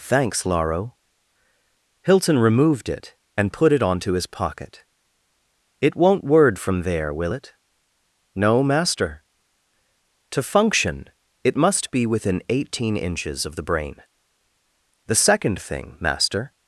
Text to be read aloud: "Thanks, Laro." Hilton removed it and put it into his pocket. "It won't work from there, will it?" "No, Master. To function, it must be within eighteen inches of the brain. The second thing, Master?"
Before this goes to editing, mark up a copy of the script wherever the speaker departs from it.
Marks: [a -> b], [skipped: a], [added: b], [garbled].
"Thanks, Laro." Hilton removed it and put it [into -> onto] his pocket. "It won't [work -> word] from there, will it?" "No, Master. To function, it must be within eighteen inches of the brain. The second thing, Master?"